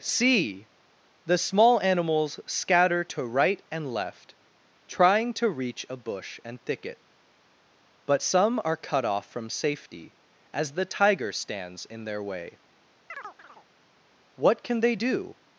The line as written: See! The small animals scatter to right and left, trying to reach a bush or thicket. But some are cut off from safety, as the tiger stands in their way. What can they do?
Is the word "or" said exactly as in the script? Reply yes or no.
no